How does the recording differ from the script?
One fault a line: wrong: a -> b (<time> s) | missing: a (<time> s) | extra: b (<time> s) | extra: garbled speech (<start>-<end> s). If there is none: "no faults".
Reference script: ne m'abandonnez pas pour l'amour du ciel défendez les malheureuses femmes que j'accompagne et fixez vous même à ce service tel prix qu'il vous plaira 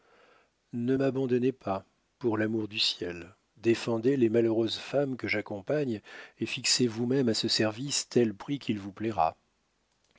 no faults